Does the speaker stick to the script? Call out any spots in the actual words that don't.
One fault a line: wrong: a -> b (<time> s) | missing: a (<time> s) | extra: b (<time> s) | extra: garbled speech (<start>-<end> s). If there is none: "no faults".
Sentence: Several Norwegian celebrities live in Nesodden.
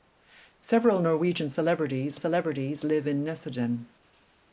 extra: celebrities (2.2 s)